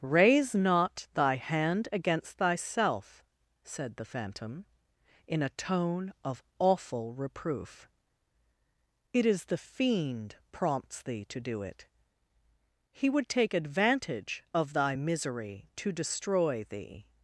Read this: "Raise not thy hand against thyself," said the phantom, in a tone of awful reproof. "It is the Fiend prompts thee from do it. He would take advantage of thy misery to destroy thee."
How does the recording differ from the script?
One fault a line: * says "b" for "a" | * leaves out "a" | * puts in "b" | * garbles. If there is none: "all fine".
* says "to" for "from"